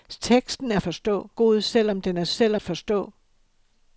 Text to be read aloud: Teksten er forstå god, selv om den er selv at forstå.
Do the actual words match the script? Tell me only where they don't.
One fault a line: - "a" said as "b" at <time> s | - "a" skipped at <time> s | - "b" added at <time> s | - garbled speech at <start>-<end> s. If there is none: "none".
none